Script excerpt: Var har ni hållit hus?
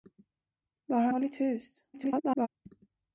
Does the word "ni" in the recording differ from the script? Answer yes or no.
yes